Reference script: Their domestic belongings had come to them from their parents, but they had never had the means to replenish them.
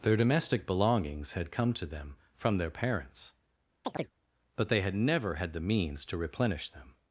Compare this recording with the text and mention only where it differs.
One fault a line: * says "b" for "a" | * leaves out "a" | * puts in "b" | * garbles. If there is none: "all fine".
all fine